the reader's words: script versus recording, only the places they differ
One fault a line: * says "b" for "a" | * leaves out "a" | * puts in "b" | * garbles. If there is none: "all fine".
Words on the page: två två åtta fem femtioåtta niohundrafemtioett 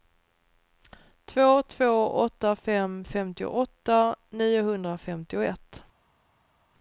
all fine